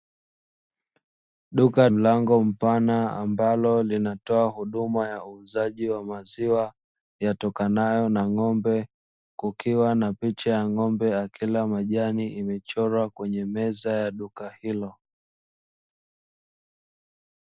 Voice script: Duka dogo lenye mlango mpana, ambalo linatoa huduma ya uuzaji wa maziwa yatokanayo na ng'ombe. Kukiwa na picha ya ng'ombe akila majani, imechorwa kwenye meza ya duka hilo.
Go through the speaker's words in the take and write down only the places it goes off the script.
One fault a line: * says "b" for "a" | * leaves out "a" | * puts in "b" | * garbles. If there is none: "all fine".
* leaves out "dogo lenye"